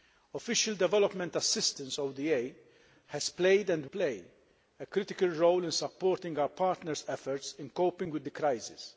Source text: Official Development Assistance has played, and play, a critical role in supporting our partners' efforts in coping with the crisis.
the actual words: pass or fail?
pass